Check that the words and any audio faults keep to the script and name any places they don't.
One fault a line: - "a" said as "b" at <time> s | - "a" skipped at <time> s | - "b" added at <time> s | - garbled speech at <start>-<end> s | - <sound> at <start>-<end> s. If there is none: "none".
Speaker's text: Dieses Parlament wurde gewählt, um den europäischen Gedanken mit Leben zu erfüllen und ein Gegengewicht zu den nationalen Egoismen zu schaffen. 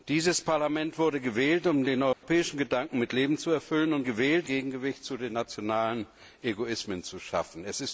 - dropout at 2.1-2.2 s
- "ein" said as "gewählt" at 4.0 s